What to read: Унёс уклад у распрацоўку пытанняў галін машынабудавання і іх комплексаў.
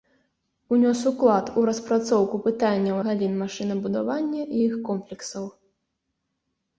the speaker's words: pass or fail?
pass